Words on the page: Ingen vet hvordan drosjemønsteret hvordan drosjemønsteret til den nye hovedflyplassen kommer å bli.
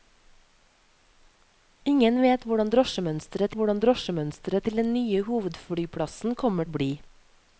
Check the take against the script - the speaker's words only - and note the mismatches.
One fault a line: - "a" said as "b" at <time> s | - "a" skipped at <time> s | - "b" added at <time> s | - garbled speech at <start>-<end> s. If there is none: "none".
none